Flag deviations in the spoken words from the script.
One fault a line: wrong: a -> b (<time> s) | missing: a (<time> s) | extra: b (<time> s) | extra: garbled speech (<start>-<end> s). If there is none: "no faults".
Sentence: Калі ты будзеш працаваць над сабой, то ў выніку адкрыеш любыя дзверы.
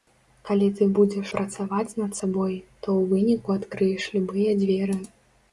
no faults